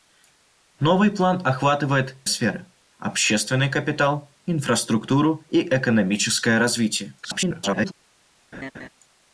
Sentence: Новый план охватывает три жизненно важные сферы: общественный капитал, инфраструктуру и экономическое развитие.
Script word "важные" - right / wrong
wrong